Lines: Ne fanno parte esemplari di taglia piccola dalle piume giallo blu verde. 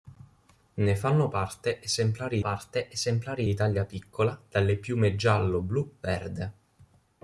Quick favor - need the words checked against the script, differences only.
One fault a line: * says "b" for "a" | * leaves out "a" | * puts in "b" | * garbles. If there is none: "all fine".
* puts in "parte esemplari"